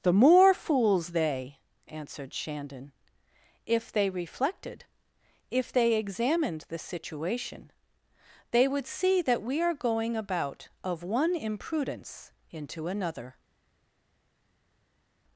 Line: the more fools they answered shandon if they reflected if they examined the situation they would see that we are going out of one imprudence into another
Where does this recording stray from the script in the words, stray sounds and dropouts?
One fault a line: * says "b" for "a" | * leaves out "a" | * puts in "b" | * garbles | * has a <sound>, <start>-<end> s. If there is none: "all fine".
* says "about" for "out"